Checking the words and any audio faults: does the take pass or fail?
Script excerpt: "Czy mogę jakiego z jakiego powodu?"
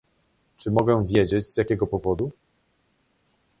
fail